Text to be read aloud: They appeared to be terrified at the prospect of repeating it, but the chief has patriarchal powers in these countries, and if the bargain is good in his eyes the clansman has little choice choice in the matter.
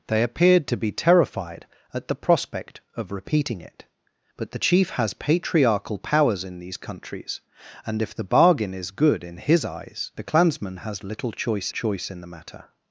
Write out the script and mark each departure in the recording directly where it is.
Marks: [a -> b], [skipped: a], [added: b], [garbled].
They appeared to be terrified at the prospect of repeating it, but the chief has patriarchal powers in these countries, and if the bargain is good in his eyes the clansman has little choice choice in the matter.